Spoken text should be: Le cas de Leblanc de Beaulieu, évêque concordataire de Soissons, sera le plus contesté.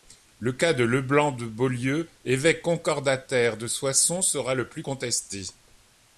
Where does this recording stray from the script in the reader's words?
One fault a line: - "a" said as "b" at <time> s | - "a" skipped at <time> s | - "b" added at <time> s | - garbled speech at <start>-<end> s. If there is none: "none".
none